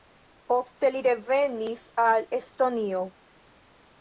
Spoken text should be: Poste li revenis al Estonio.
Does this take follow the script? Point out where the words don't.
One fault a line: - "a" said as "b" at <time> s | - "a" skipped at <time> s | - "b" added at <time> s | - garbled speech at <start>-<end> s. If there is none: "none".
none